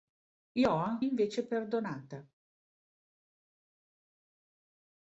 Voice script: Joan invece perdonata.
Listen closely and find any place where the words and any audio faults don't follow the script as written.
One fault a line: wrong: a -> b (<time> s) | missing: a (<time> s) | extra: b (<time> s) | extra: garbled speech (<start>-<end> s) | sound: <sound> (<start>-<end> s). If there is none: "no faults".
no faults